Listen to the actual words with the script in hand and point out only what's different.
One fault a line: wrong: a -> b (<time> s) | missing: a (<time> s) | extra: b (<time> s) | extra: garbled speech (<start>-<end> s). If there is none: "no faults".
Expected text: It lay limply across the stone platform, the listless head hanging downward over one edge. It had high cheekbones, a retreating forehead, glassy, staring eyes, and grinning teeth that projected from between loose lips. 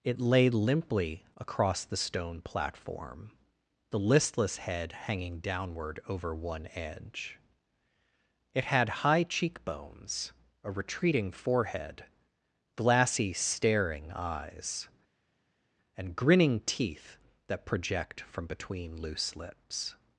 wrong: projected -> project (17.7 s)